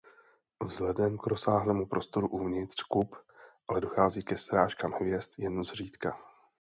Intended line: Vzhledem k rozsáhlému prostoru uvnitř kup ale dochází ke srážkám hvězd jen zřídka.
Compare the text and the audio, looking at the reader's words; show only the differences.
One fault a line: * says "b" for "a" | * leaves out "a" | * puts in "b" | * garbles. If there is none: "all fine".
all fine